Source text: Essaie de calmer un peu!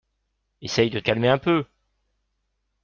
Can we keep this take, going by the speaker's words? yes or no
yes